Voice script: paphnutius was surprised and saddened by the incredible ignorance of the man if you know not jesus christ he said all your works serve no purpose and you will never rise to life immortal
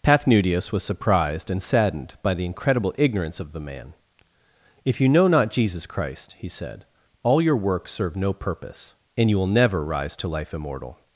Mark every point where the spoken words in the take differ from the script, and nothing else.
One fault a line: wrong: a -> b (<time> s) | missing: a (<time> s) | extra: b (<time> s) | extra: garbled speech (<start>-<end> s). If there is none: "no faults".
no faults